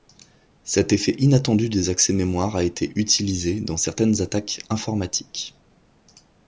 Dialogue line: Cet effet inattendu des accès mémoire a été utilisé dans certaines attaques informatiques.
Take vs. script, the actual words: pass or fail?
pass